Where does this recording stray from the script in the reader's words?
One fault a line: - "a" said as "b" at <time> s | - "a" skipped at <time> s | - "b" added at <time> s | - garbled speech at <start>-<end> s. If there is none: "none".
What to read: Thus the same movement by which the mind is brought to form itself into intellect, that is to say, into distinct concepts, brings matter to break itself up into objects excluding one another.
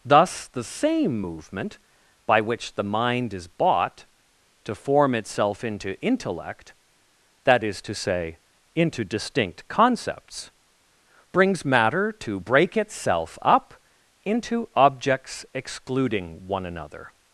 - "brought" said as "bought" at 3.5 s